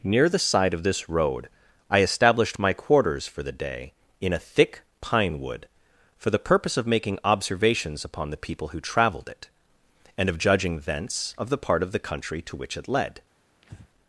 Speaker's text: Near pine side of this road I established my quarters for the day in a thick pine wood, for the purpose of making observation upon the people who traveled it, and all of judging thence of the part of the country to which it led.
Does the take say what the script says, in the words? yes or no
no